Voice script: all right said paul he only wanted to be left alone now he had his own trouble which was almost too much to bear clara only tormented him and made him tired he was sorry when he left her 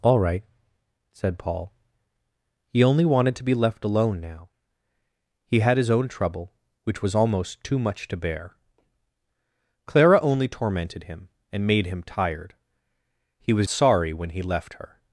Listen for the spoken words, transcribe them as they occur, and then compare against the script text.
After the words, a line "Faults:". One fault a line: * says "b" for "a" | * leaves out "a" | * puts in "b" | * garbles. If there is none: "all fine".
all right said paul he only wanted to be left alone now he had his own trouble which was almost too much to bear clara only tormented him and made him tired he was sorry when he left her
Faults:
all fine